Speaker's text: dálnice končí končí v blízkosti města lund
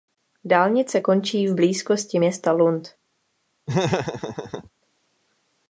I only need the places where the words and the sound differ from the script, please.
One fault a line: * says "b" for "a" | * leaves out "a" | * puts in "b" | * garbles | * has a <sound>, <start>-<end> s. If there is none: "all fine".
* leaves out "končí"
* has a laugh, 3.7-4.7 s